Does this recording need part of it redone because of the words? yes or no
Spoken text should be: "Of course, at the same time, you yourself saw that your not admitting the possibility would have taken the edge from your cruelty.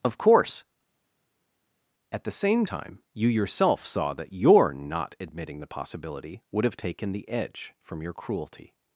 no